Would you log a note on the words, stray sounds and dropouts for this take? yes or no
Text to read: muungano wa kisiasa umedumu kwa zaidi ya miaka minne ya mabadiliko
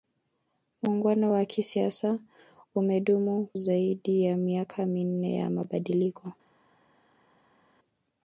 yes